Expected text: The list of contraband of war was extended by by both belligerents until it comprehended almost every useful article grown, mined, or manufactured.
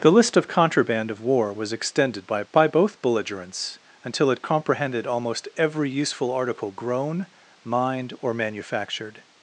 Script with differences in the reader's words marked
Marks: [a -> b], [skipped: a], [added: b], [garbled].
The list of contraband of war was extended by by both belligerents until it comprehended almost every useful article grown, mined, or manufactured.